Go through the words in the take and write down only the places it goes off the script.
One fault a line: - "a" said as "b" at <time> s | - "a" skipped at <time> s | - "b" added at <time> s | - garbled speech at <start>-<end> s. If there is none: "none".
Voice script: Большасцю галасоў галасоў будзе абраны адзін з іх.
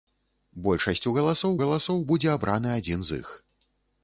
none